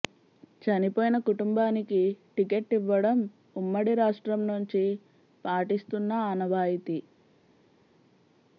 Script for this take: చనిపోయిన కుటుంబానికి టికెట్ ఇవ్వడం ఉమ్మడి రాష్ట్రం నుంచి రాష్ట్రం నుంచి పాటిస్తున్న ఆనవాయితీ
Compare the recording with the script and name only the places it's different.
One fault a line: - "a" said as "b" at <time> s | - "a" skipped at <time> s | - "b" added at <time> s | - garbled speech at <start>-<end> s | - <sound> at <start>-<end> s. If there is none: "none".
- "రాష్ట్రం నుంచి" skipped at 4.8 s